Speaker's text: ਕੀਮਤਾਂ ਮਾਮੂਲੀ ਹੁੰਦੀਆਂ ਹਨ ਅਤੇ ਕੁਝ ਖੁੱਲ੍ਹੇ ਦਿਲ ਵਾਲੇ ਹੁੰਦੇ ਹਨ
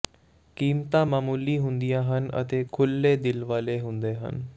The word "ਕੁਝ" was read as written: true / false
false